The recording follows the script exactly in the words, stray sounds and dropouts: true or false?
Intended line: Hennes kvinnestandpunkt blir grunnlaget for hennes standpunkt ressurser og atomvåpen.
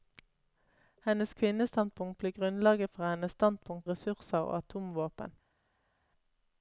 true